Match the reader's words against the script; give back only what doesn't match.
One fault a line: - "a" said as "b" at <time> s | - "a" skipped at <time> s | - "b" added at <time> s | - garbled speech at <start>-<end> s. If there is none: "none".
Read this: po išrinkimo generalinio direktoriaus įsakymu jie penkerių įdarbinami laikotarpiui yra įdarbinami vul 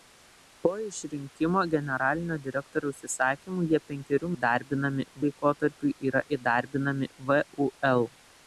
none